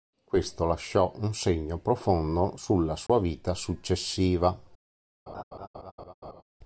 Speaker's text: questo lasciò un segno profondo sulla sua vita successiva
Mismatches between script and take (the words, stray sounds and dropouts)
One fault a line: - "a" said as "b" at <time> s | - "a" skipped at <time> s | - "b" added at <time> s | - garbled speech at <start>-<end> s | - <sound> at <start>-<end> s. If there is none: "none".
- dropout at 3.1-3.1 s
- laugh at 5.3-6.4 s